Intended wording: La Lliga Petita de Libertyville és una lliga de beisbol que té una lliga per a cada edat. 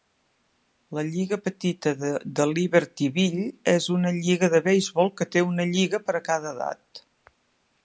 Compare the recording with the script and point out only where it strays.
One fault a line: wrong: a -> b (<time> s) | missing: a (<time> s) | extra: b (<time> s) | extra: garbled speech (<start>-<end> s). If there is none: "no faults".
no faults